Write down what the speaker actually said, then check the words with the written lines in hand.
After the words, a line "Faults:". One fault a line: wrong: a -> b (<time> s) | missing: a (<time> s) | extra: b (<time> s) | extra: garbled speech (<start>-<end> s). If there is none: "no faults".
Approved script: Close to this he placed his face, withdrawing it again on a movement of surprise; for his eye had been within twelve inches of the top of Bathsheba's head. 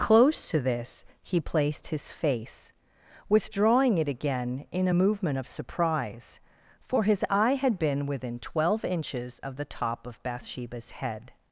Close to this he placed his face, withdrawing it again in a movement of surprise; for his eye had been within twelve inches of the top of Bathsheba's head.
Faults:
wrong: on -> in (4.7 s)